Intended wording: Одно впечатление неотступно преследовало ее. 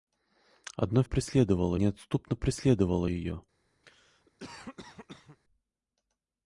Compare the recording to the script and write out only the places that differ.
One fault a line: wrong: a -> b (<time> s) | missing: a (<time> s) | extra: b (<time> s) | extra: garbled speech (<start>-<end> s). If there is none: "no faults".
wrong: впечатление -> преследовало (1.0 s)